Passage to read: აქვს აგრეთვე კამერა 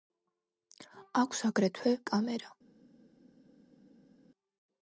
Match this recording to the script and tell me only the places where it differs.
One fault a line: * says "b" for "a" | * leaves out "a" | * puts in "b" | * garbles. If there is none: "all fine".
all fine